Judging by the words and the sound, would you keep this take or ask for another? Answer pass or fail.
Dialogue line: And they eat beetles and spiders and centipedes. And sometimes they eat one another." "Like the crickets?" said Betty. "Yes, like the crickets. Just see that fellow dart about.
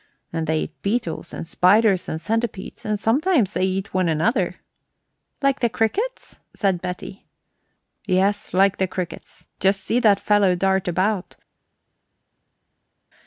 pass